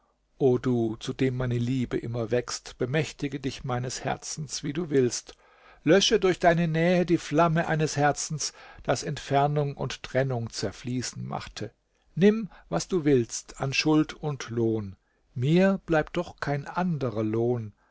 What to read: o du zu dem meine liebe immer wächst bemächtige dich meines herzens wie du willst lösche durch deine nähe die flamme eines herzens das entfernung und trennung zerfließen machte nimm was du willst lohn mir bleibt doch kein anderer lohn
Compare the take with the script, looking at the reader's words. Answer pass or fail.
fail